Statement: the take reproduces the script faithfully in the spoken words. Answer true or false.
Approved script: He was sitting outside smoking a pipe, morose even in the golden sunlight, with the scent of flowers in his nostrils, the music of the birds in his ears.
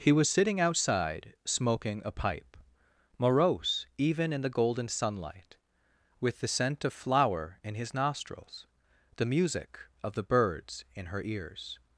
false